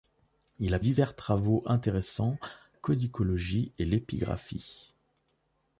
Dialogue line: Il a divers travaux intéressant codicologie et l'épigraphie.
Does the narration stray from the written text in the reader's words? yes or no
no